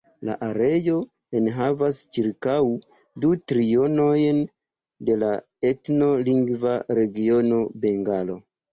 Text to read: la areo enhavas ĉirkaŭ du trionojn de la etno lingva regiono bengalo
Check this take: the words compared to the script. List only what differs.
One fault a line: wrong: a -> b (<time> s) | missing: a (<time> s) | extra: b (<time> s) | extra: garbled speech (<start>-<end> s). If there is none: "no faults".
no faults